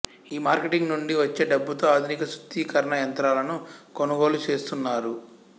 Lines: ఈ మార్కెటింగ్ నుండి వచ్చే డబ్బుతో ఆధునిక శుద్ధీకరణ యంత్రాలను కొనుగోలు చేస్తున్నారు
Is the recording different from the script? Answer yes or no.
no